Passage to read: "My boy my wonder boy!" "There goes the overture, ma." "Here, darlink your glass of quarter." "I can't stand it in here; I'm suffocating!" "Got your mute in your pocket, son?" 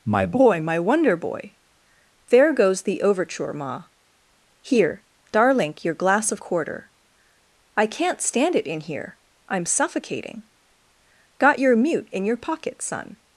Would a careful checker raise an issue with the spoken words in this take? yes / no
no